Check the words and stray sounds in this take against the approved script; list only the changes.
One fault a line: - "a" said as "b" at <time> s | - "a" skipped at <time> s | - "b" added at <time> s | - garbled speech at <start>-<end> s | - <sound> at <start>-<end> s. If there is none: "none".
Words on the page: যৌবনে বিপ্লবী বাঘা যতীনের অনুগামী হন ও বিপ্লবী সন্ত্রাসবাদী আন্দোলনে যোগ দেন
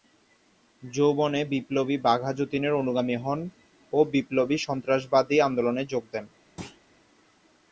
- thud at 6.6-6.8 s